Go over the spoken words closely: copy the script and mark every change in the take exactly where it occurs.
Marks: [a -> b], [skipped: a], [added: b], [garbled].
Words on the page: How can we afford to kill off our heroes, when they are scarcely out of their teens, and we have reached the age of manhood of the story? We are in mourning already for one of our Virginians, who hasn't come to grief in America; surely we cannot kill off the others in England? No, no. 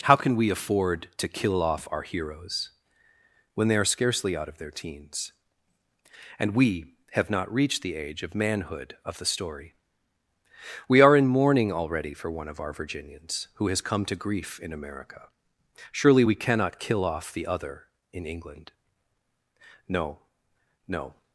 How can we afford to kill off our heroes, when they are scarcely out of their teens, and we have [added: not] reached the age of manhood of the story? We are in mourning already for one of our Virginians, who [hasn't -> has] come to grief in America; surely we cannot kill off the [others -> other] in England? No, no.